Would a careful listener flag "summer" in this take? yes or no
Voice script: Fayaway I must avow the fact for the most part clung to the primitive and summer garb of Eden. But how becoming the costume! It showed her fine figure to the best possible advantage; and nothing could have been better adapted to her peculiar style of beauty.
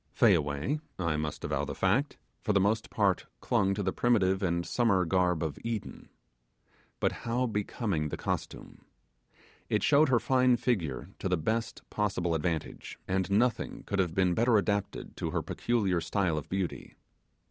no